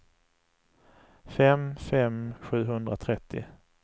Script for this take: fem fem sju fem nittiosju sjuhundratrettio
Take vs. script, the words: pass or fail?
fail